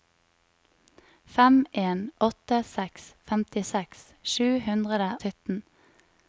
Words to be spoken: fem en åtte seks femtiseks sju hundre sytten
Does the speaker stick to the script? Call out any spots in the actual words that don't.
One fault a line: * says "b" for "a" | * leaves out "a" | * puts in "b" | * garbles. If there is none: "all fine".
all fine